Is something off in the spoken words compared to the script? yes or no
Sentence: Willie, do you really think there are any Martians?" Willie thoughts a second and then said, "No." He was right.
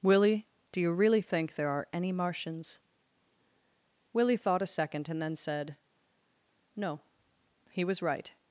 yes